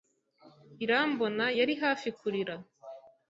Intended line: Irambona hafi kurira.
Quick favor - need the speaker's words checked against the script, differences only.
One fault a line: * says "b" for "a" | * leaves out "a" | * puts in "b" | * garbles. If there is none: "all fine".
* puts in "yari"